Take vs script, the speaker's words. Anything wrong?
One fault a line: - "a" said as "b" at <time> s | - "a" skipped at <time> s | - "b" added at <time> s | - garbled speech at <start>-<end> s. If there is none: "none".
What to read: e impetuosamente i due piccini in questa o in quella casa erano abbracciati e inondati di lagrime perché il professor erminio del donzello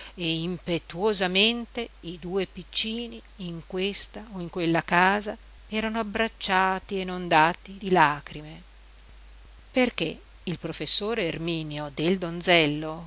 none